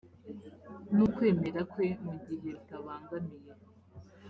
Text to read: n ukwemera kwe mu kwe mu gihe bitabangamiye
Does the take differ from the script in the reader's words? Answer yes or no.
yes